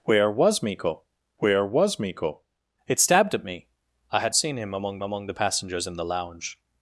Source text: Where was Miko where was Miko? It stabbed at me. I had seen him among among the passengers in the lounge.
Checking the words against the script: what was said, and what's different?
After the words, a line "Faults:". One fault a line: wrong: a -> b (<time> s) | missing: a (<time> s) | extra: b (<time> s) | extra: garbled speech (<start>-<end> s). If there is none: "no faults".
Where was Miko where was Miko? It stabbed at me. I had seen him among among the passengers in the lounge.
Faults:
no faults